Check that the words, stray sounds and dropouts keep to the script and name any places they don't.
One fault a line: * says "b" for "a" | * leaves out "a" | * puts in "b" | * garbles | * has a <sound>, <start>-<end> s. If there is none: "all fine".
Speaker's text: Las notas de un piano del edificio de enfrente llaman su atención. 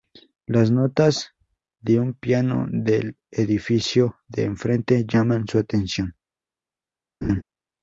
* has a laugh, 7.2-7.4 s